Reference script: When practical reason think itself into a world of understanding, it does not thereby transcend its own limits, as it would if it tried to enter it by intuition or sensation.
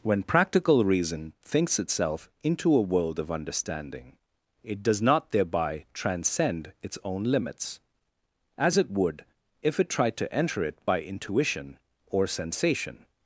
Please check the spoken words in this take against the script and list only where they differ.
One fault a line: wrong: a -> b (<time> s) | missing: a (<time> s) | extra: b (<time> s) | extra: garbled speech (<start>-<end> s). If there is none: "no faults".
wrong: think -> thinks (1.4 s)